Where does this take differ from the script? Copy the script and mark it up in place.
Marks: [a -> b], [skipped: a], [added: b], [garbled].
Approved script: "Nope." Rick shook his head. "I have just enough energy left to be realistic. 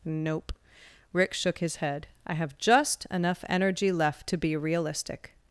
"Nope." Rick shook his head. "I have just enough energy left to be realistic.